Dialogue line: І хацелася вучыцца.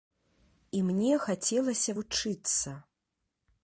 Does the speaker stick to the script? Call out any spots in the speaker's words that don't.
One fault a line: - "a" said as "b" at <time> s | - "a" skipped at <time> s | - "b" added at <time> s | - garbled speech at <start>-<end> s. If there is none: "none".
- "мне" added at 0.9 s